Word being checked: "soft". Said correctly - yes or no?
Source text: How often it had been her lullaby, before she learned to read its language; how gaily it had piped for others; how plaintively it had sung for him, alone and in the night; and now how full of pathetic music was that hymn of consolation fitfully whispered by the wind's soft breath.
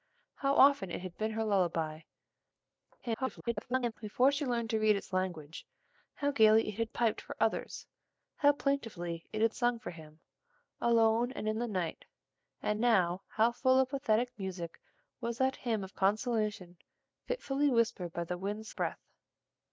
no